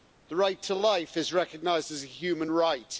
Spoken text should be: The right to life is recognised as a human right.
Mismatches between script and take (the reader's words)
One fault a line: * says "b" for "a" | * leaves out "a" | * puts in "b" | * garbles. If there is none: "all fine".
all fine